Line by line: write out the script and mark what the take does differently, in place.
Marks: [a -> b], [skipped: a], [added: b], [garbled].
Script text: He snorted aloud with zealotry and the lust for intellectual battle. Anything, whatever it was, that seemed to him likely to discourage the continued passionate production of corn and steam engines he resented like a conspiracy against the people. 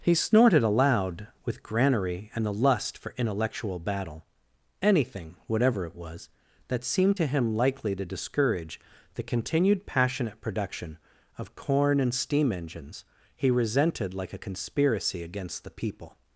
He snorted aloud with [zealotry -> granary] and the lust for intellectual battle. Anything, whatever it was, that seemed to him likely to discourage the continued passionate production of corn and steam engines he resented like a conspiracy against the people.